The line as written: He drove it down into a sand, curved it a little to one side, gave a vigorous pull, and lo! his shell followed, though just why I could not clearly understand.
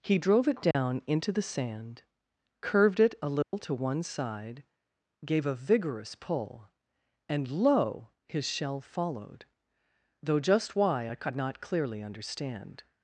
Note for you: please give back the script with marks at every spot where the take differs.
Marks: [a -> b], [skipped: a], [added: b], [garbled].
He drove it down into [a -> the] sand, curved it a little to one side, gave a vigorous pull, and lo! his shell followed, though just why I could not clearly understand.